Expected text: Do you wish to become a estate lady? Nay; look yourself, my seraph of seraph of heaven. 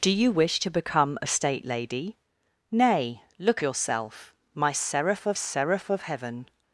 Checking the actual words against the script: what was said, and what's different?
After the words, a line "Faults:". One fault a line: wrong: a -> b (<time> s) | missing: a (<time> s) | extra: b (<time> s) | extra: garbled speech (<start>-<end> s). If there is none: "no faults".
Do you wish to become a estate lady? Nay; look yourself, my seraph of seraph of heaven.
Faults:
no faults